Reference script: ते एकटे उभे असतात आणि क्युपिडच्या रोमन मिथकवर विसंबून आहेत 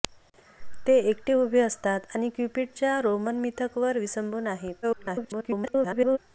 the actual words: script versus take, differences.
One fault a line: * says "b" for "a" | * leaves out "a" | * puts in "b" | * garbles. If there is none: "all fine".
* garbles